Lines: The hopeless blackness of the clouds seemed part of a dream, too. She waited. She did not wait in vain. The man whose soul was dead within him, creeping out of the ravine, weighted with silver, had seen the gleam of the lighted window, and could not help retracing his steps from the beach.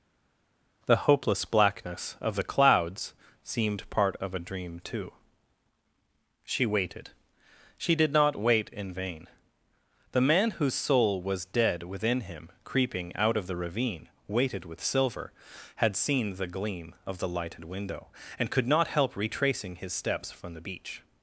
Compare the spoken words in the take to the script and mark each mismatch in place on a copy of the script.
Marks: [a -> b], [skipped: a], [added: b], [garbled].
The hopeless blackness of the clouds seemed part of a dream, too. She waited. She did not wait in vain. The man whose soul was dead within him, creeping out of the ravine, weighted with silver, had seen the gleam of the lighted window, and could not help retracing his steps from the beach.